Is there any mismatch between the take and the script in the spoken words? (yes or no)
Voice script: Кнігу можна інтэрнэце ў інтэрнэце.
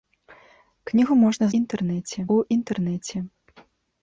no